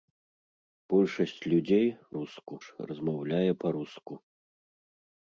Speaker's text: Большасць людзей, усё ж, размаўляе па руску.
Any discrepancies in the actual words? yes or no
yes